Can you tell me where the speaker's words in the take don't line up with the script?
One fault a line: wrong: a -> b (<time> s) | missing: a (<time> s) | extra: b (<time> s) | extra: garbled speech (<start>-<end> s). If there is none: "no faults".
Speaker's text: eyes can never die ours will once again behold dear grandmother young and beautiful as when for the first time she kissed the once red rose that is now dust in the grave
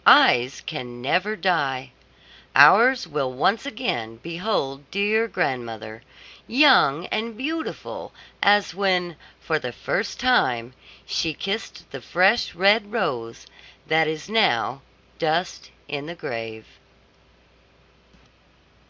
wrong: once -> fresh (12.0 s)